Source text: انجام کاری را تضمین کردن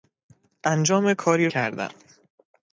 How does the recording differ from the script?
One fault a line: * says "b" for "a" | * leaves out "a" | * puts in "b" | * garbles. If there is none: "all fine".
* leaves out "را تضمین"